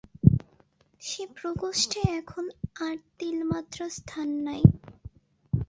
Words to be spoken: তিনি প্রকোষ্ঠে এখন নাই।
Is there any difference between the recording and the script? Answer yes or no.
yes